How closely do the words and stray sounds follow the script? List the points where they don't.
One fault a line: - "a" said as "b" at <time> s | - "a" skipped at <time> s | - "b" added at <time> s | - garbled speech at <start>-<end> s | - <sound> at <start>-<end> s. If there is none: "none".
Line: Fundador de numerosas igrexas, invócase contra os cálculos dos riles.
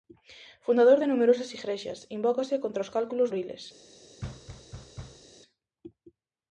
- "dos" skipped at 3.3 s
- thud at 4.2-5.3 s